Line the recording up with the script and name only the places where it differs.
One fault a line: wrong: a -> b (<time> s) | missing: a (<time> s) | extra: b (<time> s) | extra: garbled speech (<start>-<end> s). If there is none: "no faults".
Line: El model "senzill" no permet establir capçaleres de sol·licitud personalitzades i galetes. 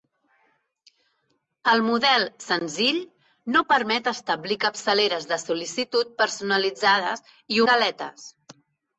no faults